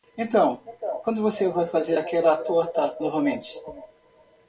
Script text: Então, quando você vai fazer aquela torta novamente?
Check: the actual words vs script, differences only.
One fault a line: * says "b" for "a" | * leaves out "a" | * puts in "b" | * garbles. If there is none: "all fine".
all fine